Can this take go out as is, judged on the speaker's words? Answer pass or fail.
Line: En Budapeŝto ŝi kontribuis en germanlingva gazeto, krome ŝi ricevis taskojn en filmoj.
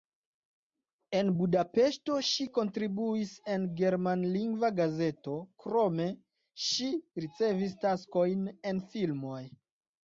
pass